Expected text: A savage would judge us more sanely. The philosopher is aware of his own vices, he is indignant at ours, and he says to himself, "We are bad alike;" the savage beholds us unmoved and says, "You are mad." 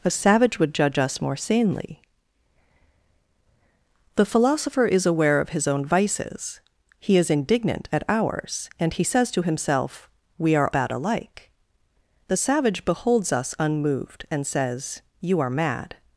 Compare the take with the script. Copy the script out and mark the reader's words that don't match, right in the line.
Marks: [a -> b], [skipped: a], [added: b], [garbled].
A savage would judge us more sanely. The philosopher is aware of his own vices, he is indignant at ours, and he says to himself, "We are bad alike;" the savage beholds us unmoved and says, "You are mad."